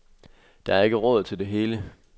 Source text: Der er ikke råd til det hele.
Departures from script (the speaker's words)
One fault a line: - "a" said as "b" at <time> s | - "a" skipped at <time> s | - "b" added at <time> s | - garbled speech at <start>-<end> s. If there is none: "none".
none